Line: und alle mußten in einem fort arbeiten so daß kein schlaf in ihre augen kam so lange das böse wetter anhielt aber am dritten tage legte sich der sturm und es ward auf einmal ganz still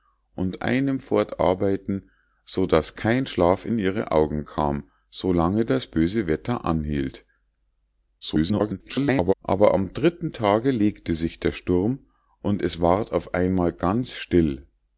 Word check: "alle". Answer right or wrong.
wrong